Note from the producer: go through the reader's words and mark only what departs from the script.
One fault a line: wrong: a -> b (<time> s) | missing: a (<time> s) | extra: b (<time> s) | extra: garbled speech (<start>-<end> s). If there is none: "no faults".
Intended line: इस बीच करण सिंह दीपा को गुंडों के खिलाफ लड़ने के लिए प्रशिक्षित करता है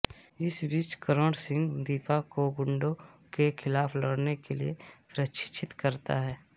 no faults